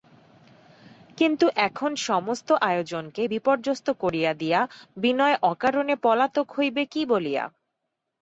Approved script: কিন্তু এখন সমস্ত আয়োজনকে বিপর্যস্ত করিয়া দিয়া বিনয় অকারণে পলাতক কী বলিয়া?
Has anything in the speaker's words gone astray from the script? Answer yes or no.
yes